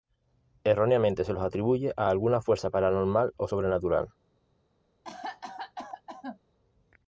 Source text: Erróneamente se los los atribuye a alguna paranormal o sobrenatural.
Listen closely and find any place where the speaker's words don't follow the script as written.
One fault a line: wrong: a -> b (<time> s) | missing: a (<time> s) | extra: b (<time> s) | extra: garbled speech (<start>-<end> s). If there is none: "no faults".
missing: los (1.4 s)
extra: fuerza (2.4 s)